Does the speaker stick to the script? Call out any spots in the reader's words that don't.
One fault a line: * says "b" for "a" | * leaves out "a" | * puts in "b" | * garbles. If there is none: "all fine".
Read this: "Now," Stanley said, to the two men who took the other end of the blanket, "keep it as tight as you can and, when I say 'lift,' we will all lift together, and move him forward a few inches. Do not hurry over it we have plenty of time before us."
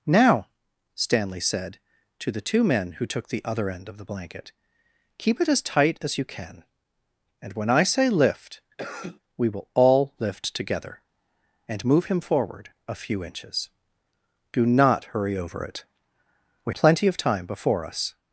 * leaves out "have"